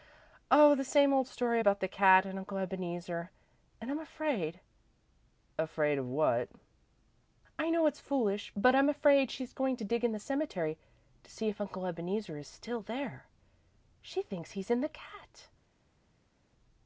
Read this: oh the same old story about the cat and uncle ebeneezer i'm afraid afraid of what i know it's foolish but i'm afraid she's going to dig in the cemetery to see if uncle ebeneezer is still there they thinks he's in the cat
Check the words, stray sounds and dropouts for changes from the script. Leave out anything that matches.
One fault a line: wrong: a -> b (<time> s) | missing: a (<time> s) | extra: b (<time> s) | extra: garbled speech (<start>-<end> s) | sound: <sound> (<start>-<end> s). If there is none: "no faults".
extra: and (3.8 s)
wrong: they -> she (14.0 s)